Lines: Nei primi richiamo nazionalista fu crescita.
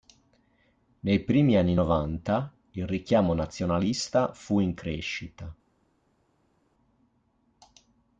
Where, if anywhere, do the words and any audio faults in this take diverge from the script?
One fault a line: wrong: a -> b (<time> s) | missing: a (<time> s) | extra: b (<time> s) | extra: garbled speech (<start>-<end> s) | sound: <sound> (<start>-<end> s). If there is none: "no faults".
extra: anni novanta il (1.6 s)
extra: in (4.6 s)